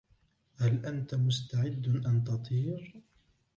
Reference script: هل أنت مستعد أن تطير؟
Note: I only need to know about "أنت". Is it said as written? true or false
true